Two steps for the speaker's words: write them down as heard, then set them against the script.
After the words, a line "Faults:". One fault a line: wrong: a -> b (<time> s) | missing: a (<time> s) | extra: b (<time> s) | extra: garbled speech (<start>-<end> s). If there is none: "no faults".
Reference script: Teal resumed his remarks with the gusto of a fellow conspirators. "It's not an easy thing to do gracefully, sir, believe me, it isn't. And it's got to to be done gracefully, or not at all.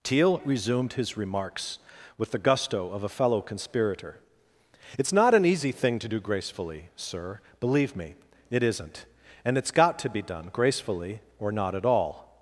Teal resumed his remarks with the gusto of a fellow conspirator. "It's not an easy thing to do gracefully, sir, believe me, it isn't. And it's got to be done gracefully, or not at all.
Faults:
wrong: conspirators -> conspirator (3.4 s)
missing: to (10.1 s)